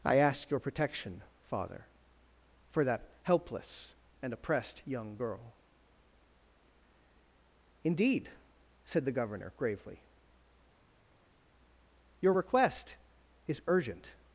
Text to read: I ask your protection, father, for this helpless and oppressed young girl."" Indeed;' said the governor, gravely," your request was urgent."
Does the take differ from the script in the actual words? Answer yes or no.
yes